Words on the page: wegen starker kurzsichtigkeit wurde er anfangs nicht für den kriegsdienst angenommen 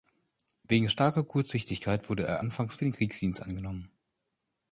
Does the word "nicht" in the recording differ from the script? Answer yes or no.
yes